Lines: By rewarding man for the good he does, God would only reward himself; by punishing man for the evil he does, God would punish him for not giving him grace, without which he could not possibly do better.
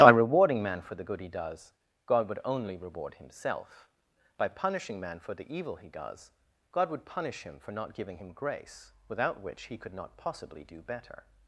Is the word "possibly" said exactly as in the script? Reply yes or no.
yes